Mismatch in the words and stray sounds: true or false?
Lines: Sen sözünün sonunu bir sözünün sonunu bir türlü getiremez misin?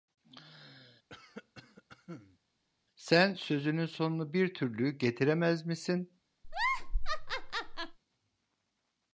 true